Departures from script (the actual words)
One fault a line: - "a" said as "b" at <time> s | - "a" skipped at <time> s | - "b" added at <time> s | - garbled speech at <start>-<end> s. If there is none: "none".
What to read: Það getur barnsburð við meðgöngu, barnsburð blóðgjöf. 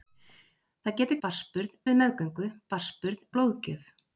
none